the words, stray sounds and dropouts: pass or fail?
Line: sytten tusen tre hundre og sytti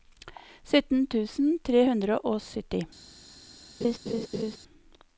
fail